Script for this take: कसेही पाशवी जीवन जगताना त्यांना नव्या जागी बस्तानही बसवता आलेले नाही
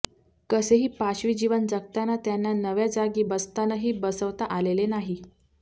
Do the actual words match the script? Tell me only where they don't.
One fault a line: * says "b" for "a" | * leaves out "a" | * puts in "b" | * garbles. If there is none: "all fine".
all fine